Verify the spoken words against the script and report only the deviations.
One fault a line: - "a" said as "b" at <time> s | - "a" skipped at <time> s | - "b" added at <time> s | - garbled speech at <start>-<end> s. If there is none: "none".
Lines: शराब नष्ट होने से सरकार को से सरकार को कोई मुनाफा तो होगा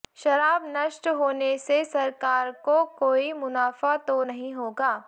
- "से सरकार को" skipped at 2.8 s
- "नहीं" added at 4.2 s